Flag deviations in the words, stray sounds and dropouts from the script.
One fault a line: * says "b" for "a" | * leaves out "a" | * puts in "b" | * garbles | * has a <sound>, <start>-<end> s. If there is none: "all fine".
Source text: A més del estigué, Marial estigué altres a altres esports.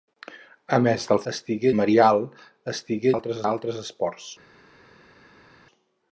all fine